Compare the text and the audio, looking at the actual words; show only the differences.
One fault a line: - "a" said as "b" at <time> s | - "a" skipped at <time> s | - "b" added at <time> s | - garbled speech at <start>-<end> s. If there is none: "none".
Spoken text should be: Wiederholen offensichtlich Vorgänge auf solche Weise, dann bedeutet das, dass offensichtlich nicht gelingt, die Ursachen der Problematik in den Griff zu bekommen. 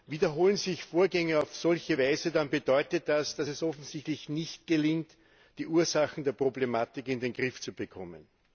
- "offensichtlich" said as "sich" at 0.6 s
- "es" added at 3.5 s